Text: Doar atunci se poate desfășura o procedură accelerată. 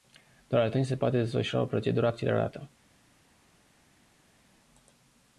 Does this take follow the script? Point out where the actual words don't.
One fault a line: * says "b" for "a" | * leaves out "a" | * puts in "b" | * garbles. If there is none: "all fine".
all fine